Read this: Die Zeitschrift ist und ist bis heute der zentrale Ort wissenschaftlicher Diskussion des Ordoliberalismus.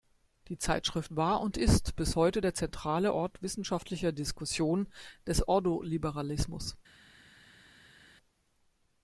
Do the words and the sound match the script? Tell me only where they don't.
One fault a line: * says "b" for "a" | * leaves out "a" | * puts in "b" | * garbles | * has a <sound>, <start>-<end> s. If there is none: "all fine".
* says "war" for "ist"